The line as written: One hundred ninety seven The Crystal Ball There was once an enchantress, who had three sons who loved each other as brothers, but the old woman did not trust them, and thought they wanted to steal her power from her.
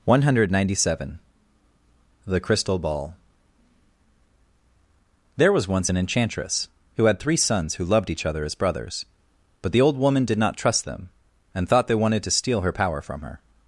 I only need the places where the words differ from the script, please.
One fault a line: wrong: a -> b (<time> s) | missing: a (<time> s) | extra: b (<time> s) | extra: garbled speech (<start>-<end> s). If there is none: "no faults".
no faults